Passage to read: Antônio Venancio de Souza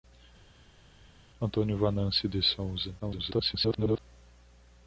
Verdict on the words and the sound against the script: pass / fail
fail